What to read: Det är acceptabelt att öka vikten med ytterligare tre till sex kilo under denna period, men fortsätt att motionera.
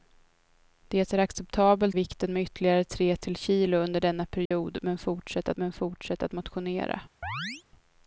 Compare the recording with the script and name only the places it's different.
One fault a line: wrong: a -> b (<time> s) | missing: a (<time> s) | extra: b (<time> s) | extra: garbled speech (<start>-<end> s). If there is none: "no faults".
missing: att öka (2.0 s)
missing: sex (3.4 s)
extra: men fortsätt att (5.6 s)